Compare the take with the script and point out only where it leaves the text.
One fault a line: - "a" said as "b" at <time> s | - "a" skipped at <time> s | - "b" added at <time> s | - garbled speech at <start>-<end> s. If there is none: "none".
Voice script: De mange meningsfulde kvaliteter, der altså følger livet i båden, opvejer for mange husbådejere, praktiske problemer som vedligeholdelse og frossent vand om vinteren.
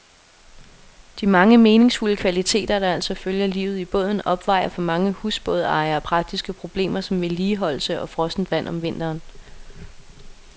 none